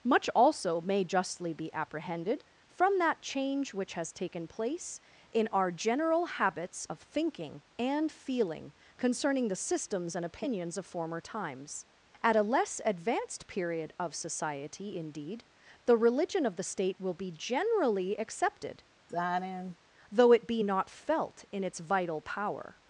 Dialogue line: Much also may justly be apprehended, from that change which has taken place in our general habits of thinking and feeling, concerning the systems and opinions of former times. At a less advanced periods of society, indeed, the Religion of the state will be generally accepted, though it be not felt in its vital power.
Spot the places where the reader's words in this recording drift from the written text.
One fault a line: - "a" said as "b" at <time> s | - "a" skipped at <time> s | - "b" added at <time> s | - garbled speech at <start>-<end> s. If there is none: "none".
- "periods" said as "period" at 13.5 s